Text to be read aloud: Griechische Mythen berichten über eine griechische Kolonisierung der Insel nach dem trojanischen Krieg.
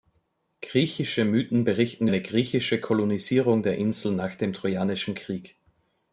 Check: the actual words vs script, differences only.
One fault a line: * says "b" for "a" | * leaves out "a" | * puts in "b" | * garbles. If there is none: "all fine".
* leaves out "über"